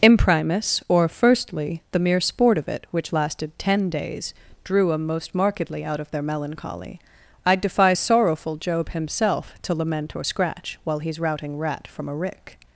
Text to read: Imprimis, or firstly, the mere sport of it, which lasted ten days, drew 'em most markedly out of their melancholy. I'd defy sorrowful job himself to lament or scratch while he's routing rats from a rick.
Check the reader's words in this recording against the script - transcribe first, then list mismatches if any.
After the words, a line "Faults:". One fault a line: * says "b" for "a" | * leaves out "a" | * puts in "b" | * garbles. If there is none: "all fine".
Imprimis, or firstly, the mere sport of it, which lasted ten days, drew 'em most markedly out of their melancholy. I'd defy sorrowful job himself to lament or scratch while he's routing rat from a rick.
Faults:
* says "rat" for "rats"